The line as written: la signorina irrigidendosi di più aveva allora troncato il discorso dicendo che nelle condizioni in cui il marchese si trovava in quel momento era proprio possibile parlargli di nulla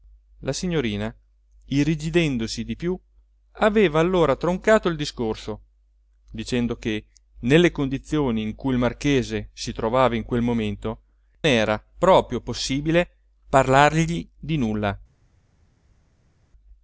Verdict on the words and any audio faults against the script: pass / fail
pass